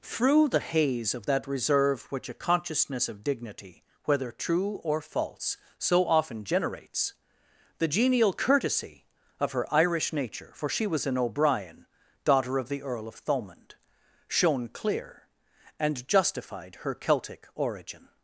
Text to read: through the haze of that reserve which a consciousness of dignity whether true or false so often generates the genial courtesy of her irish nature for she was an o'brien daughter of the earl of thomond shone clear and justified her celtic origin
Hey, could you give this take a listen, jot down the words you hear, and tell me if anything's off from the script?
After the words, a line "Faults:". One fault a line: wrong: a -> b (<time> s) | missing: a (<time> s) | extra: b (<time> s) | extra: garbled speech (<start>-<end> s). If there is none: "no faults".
through the haze of that reserve which a consciousness of dignity whether true or false so often generates the genial courtesy of her irish nature for she was an o'brien daughter of the earl of thomond shone clear and justified her celtic origin
Faults:
no faults